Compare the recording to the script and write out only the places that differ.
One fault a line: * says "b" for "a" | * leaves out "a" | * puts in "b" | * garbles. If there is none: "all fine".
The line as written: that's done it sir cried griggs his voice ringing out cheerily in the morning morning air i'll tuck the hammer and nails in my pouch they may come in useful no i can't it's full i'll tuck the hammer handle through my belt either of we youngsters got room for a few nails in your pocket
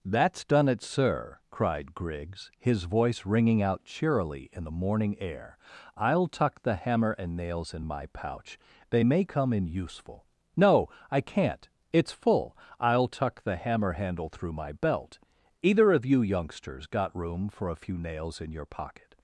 * leaves out "morning"
* says "you" for "we"